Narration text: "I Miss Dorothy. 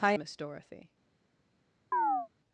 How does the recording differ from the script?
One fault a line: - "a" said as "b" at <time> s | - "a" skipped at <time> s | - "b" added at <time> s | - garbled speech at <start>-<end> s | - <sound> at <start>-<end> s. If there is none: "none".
- chirp at 1.9-2.3 s